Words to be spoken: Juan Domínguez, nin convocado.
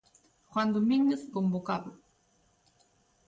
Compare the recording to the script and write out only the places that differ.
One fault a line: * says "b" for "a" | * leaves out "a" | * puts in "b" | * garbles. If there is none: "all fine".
* leaves out "nin"